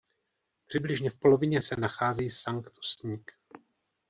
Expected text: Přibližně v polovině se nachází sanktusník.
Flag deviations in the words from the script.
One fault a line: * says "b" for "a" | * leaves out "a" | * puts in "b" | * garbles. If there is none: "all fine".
all fine